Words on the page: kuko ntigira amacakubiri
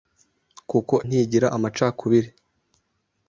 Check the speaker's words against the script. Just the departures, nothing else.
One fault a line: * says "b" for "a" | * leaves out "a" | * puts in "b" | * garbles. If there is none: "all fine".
all fine